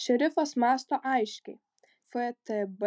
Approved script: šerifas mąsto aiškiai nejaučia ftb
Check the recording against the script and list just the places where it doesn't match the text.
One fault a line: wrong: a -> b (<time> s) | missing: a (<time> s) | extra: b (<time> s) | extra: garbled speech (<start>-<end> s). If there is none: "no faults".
missing: nejaučia (1.6 s)